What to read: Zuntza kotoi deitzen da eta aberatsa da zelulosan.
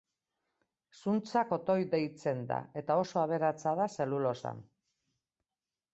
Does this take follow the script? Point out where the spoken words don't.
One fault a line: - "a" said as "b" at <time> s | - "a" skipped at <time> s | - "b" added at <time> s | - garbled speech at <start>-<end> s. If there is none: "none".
- "oso" added at 3.0 s